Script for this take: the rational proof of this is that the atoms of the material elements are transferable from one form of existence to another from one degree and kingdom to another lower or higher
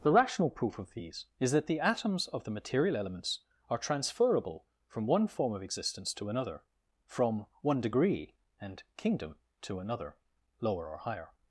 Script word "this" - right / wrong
wrong